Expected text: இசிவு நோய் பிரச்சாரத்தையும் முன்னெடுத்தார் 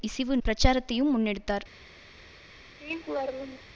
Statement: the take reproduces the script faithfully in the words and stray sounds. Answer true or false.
false